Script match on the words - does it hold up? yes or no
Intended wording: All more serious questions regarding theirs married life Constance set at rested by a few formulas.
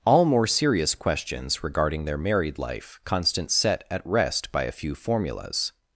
no